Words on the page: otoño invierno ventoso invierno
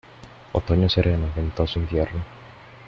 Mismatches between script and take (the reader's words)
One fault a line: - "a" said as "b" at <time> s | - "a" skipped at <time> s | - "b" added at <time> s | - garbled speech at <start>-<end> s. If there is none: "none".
- "invierno" said as "sereno" at 0.9 s